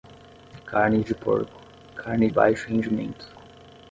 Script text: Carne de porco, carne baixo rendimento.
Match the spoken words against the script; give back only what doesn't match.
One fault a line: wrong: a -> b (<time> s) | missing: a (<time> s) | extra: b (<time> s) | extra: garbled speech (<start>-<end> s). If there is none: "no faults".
no faults